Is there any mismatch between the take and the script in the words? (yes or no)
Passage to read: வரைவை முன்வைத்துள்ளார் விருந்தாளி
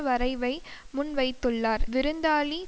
no